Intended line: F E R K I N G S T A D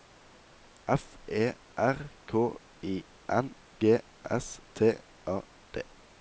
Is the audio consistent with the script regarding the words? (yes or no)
yes